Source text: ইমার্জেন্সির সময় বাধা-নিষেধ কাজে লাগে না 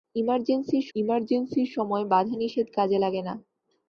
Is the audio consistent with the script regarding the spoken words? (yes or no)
no